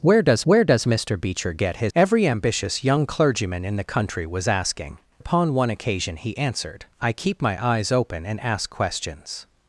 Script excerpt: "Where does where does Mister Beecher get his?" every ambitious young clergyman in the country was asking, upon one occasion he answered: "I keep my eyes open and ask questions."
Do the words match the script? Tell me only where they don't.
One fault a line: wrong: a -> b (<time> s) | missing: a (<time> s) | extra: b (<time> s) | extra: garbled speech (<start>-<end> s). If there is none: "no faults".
no faults